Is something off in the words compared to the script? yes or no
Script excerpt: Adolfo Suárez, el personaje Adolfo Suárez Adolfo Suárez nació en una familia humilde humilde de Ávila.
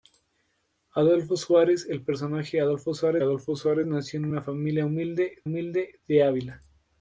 no